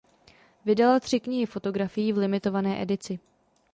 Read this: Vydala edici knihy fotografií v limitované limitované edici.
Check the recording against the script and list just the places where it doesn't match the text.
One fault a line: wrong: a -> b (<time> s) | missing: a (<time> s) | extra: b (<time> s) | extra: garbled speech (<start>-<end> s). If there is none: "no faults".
wrong: edici -> tři (1.0 s)
missing: limitované (2.8 s)